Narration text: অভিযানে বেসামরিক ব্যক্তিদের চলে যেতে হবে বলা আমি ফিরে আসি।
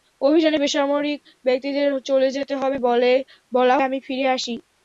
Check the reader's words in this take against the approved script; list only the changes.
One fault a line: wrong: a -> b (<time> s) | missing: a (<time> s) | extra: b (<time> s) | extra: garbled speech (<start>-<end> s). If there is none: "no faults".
no faults